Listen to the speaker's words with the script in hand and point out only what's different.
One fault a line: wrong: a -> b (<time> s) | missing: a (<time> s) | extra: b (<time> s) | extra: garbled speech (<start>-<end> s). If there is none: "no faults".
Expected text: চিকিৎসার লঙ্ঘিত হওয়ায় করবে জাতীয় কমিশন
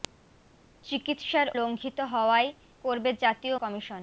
no faults